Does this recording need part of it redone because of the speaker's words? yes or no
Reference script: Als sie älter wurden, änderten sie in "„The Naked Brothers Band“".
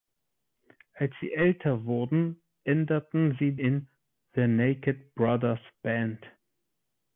no